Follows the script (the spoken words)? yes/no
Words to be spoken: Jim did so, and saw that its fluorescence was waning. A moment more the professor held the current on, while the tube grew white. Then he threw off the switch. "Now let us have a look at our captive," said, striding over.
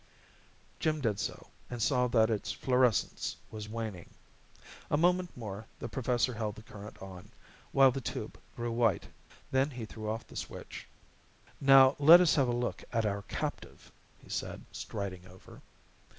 no